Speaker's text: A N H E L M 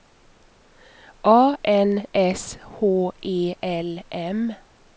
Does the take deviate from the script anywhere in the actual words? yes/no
yes